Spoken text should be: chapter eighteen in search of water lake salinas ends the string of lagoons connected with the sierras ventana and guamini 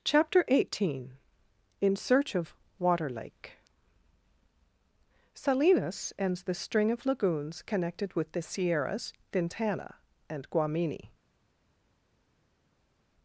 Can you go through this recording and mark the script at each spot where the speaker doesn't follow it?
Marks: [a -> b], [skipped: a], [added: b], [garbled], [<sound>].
chapter eighteen in search of water lake salinas ends the string of lagoons connected with the sierras ventana and guamini